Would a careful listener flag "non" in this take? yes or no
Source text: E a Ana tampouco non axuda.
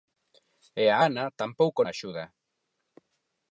yes